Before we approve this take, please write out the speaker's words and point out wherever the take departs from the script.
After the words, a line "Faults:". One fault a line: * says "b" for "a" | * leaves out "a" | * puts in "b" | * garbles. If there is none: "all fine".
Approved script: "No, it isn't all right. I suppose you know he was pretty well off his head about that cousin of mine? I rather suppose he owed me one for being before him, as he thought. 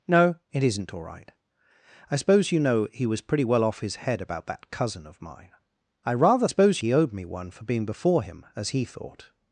"No, it isn't all right. I suppose you know he was pretty well off his head about that cousin of mine? I rather suppose he owed me one for being before him, as he thought.
Faults:
all fine